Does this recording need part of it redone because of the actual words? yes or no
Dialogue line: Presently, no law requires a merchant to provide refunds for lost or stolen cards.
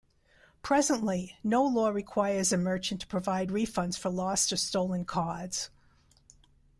no